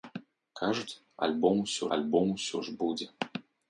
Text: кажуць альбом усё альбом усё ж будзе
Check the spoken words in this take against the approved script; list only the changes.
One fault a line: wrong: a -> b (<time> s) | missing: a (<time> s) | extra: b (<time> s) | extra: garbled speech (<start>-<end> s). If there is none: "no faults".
no faults